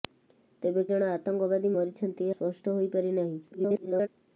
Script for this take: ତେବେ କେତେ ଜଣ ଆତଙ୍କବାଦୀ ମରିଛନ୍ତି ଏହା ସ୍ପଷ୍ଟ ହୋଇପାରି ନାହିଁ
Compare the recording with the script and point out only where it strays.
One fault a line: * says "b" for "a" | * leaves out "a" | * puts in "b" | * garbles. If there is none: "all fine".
* leaves out "କେତେ"
* leaves out "ଏହା"
* garbles